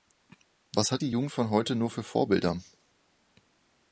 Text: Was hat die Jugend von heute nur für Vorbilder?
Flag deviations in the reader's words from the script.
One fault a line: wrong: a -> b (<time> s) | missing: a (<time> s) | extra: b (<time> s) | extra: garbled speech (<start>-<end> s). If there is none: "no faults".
no faults